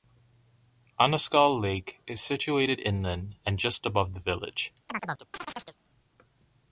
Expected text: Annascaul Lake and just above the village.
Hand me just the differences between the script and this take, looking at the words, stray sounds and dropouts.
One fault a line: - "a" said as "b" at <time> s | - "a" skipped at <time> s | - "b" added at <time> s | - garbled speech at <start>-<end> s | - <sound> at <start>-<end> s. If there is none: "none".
- "is situated inland" added at 2.1 s
- chirp at 4.9-5.8 s